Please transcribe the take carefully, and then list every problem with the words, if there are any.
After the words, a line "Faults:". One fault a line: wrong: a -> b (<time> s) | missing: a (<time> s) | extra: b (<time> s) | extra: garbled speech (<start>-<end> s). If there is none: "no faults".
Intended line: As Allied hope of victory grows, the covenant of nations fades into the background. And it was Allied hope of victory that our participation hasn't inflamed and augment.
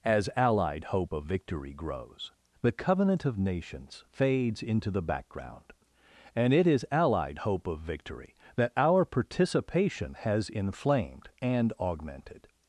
As Allied hope of victory grows, the covenant of nations fades into the background. And it is Allied hope of victory that our participation has inflamed and augmented.
Faults:
wrong: was -> is (6.7 s)
wrong: hasn't -> has (10.1 s)
wrong: augment -> augmented (11.8 s)